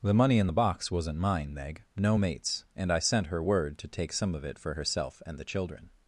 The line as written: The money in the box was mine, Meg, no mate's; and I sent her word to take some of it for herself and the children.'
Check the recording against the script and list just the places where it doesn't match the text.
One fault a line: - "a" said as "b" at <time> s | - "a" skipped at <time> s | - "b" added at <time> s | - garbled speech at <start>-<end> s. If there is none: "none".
- "was" said as "wasn't" at 0.9 s